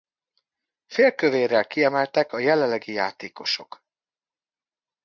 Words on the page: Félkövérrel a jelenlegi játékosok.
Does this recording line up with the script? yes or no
no